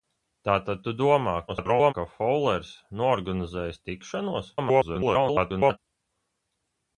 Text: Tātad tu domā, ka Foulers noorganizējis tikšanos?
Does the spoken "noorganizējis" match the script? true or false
true